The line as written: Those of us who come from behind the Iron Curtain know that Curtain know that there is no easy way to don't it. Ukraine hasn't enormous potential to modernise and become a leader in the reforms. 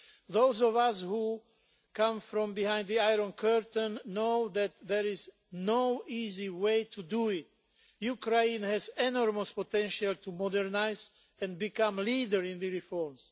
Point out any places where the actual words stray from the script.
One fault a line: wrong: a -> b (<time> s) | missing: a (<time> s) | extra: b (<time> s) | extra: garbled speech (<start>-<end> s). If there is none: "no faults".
missing: Curtain know that (4.7 s)
wrong: don't -> do (7.0 s)
wrong: hasn't -> has (8.6 s)